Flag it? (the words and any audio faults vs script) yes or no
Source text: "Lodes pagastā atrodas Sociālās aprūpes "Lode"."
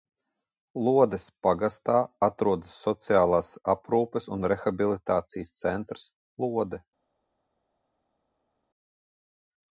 yes